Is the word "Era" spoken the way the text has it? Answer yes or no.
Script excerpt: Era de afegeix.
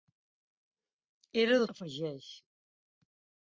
yes